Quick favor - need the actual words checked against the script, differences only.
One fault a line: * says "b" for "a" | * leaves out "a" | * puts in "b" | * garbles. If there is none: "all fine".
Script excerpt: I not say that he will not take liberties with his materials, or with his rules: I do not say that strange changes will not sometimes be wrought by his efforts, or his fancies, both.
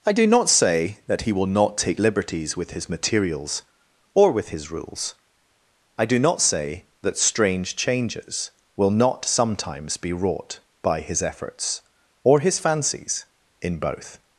* puts in "do"
* puts in "in"